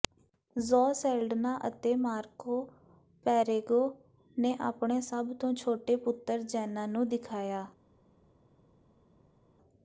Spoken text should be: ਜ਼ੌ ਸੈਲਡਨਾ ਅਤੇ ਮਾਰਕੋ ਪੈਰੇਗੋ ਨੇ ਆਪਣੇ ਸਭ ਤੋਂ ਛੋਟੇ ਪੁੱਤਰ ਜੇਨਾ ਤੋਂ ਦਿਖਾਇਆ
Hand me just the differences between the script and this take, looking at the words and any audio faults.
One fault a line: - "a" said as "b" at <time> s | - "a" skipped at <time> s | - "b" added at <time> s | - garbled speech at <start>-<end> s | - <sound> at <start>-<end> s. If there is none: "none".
- "ਤੋਂ" said as "ਨੂੰ" at 6.9 s